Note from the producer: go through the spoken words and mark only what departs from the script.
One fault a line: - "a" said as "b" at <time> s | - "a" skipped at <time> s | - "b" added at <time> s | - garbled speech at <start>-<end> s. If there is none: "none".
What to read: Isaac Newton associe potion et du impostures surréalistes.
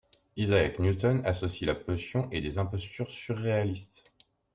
- "la" added at 1.7 s
- "du" said as "des" at 2.4 s